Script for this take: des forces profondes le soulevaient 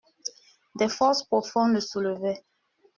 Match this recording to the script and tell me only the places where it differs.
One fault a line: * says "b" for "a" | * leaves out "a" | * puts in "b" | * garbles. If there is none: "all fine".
all fine